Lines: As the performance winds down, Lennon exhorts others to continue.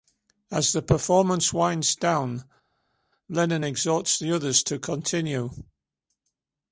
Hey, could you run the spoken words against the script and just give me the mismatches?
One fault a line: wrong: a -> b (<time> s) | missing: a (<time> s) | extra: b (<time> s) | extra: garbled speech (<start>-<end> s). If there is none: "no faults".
extra: the (4.2 s)